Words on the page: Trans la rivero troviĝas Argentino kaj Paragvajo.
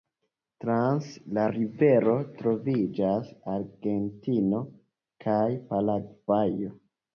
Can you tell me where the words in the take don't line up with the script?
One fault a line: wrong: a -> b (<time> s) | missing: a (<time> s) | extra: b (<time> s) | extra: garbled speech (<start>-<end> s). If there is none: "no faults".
no faults